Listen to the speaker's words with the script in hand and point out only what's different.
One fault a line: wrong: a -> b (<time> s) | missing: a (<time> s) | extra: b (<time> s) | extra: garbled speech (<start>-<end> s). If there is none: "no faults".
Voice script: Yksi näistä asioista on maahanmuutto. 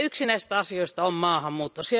no faults